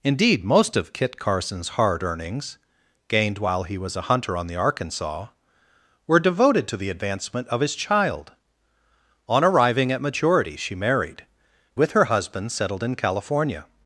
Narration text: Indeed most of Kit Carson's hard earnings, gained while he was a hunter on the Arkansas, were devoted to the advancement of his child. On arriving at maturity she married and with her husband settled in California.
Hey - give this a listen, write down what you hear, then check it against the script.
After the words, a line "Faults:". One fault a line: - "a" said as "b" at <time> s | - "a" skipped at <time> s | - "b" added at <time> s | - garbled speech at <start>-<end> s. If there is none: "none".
Indeed most of Kit Carson's hard earnings, gained while he was a hunter on the Arkansas, were devoted to the advancement of his child. On arriving at maturity she married with her husband settled in California.
Faults:
- "and" skipped at 11.2 s